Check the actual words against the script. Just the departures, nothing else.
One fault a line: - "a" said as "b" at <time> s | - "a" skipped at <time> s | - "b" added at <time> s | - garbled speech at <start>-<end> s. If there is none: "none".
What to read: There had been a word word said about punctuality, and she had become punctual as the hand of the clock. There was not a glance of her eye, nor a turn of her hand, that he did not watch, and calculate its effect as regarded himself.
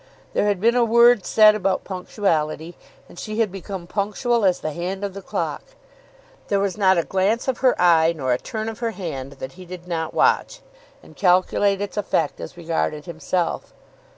- "word" skipped at 1.3 s